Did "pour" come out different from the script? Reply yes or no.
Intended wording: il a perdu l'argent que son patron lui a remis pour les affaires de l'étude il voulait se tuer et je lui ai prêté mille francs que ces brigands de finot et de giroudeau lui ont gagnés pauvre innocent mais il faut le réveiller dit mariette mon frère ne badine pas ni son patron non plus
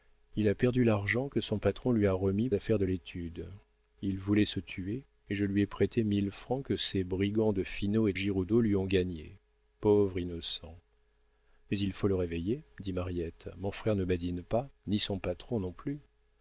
yes